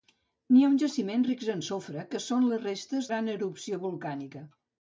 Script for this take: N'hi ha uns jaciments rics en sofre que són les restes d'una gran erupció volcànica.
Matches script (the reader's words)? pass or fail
fail